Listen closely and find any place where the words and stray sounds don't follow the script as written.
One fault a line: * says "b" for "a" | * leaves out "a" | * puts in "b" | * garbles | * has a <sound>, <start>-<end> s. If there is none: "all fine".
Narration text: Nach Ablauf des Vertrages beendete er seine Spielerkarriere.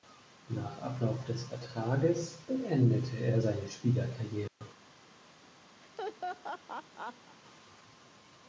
* has a dropout, 4.5-4.6 s
* has a laugh, 5.8-7.4 s